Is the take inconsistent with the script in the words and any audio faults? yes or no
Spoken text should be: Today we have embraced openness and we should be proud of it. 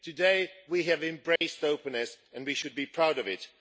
yes